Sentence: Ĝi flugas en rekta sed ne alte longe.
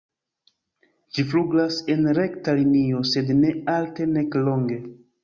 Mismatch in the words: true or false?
true